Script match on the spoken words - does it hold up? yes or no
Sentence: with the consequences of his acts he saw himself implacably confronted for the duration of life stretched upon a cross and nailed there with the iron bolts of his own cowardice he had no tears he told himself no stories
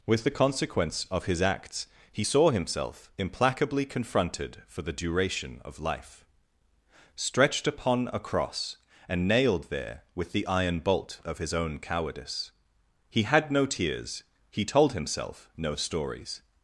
no